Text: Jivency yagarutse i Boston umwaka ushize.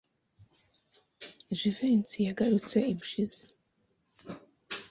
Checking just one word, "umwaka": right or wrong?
wrong